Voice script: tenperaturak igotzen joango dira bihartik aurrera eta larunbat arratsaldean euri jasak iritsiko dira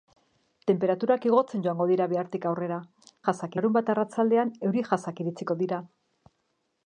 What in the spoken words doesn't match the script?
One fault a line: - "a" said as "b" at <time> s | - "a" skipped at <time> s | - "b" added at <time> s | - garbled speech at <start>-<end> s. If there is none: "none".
- "eta" said as "jasak" at 3.3 s